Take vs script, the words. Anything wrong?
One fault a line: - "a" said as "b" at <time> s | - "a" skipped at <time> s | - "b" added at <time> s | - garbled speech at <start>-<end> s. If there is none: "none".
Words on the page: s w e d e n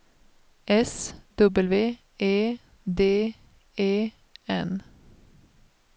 none